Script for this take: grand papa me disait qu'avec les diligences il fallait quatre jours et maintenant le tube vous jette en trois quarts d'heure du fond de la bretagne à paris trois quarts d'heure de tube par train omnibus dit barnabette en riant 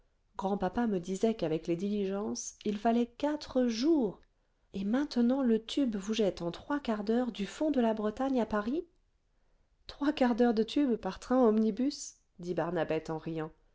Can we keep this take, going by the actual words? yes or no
yes